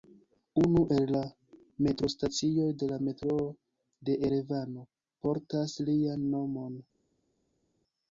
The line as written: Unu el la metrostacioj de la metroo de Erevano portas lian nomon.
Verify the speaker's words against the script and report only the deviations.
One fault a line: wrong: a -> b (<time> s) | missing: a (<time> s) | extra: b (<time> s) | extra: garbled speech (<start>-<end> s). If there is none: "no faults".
no faults